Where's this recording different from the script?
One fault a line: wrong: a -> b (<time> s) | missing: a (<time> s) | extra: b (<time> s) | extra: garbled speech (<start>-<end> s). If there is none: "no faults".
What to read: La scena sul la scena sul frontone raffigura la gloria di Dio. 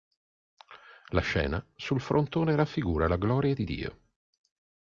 missing: la scena sul (2.0 s)